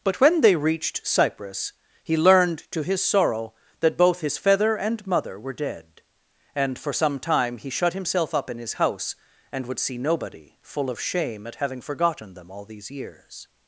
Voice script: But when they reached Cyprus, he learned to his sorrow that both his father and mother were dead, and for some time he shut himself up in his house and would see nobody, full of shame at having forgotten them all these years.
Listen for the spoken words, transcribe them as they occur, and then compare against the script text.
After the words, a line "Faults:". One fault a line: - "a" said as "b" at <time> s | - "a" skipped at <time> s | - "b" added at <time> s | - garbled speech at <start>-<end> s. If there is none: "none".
But when they reached Cyprus, he learned to his sorrow that both his feather and mother were dead, and for some time he shut himself up in his house and would see nobody, full of shame at having forgotten them all these years.
Faults:
- "father" said as "feather" at 4.4 s